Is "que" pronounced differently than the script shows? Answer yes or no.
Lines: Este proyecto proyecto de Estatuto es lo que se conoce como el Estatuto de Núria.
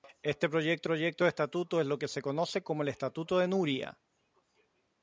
no